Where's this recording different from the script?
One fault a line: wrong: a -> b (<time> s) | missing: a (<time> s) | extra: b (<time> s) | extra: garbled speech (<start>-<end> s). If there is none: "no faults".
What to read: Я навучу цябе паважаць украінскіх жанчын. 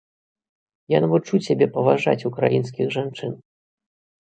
no faults